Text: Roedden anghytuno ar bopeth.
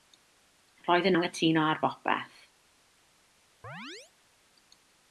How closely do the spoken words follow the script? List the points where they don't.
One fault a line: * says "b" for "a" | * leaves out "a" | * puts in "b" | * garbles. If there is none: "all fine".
all fine